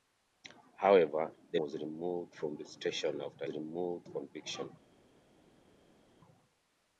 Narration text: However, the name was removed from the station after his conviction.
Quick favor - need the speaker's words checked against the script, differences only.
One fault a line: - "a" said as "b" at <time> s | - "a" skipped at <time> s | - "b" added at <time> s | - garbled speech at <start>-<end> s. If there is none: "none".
- "name" skipped at 1.6 s
- "his" said as "removed" at 3.5 s